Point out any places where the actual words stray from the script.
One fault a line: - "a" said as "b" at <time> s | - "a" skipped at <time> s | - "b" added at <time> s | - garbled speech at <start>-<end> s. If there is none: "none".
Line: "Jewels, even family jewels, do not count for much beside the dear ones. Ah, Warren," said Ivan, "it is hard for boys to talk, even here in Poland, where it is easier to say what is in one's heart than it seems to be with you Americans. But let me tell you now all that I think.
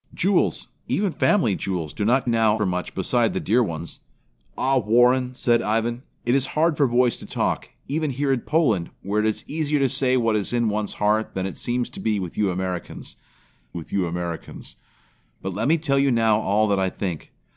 - "count" said as "now" at 2.3 s
- "with you Americans" added at 13.7 s